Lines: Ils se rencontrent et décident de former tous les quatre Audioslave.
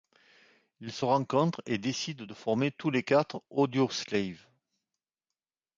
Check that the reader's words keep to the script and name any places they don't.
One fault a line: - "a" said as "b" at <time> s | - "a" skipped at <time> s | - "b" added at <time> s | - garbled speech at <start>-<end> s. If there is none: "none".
none